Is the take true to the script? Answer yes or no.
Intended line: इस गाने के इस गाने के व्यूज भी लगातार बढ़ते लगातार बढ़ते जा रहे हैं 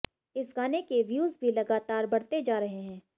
no